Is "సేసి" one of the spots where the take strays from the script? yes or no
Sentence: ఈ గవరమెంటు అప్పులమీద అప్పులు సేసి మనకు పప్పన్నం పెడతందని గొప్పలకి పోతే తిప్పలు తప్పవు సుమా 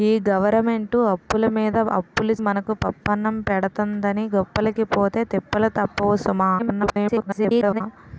yes